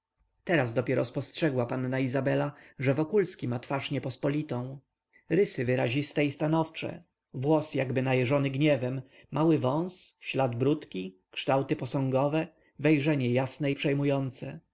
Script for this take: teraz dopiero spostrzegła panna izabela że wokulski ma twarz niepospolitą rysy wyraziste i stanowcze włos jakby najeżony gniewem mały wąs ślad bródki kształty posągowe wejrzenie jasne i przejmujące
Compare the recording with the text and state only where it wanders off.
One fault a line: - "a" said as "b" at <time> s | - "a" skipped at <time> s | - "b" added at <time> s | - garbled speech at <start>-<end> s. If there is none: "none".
none